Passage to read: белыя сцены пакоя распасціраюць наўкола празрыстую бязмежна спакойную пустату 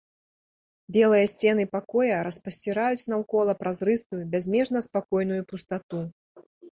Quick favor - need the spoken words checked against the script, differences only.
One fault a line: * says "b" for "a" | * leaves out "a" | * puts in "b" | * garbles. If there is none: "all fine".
all fine